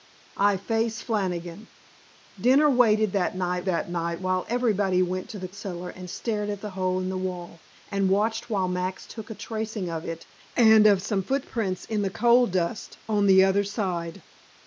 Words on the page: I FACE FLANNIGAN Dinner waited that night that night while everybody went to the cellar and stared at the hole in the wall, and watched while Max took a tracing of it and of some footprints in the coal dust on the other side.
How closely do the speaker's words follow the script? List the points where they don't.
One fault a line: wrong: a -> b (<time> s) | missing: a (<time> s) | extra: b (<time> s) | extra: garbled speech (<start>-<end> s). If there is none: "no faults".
no faults